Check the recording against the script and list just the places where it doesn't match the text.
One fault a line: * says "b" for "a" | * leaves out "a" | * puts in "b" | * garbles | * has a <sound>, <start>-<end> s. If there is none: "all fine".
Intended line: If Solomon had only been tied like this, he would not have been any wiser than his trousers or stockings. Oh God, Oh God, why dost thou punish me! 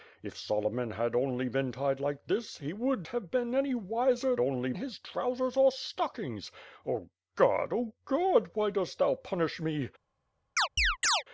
* leaves out "not"
* says "only" for "than"
* has a chirp, 10.6-11.2 s